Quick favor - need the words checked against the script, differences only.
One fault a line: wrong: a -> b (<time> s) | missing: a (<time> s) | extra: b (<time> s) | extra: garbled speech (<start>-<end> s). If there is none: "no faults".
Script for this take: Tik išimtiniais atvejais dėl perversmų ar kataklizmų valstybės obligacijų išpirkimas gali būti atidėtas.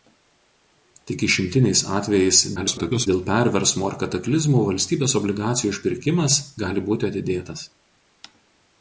extra: garbled speech (2.6-3.1 s)